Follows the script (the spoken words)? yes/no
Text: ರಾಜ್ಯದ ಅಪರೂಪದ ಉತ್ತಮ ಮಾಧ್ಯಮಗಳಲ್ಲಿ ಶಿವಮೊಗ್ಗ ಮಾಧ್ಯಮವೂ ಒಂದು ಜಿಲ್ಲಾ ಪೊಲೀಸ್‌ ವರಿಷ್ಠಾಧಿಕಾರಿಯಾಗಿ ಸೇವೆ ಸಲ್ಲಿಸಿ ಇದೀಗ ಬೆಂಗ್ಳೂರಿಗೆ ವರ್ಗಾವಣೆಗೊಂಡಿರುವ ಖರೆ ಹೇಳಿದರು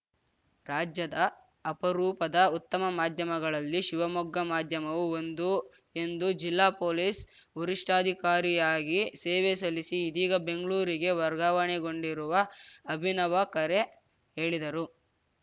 no